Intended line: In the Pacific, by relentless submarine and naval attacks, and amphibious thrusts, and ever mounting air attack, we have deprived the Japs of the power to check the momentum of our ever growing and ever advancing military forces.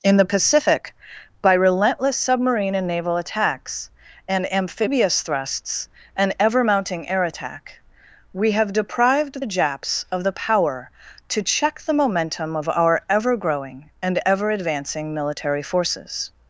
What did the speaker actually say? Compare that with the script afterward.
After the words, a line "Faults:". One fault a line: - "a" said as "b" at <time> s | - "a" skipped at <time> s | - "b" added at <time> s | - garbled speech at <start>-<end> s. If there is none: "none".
In the Pacific, by relentless submarine and naval attacks, and amphibious thrusts, and ever mounting air attack, we have deprived the Japs of the power to check the momentum of our ever growing and ever advancing military forces.
Faults:
none